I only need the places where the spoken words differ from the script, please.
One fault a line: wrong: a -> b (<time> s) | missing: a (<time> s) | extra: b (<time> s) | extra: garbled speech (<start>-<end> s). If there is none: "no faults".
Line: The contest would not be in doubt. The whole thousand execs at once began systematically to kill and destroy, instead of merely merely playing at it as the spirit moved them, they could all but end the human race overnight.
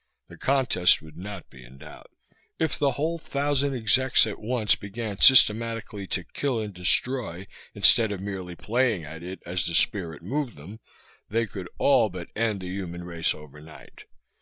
extra: If (2.6 s)
missing: merely (8.6 s)